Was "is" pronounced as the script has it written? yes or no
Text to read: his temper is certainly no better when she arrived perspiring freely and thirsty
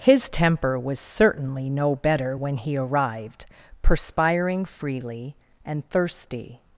no